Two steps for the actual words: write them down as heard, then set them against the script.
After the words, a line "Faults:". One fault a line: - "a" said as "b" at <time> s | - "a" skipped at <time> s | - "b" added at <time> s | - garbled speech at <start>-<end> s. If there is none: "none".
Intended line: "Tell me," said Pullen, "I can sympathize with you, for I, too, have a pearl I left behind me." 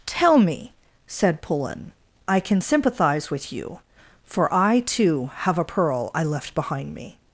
"Tell me," said Pullen, "I can sympathize with you, for I, too, have a pearl I left behind me."
Faults:
none